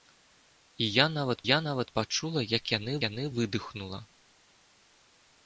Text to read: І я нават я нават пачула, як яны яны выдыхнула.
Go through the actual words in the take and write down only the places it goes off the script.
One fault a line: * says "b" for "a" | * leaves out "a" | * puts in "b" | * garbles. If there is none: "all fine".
all fine